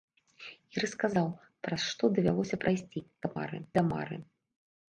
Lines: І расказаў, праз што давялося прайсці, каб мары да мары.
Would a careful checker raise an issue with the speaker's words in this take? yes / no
no